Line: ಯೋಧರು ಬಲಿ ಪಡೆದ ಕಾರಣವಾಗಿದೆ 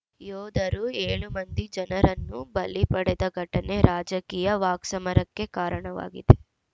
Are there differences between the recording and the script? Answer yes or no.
yes